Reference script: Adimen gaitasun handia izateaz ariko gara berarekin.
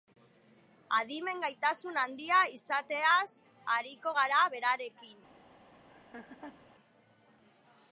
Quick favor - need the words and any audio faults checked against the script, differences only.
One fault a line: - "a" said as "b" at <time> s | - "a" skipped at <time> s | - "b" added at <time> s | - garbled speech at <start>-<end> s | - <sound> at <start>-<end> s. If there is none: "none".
- laugh at 5.9-6.7 s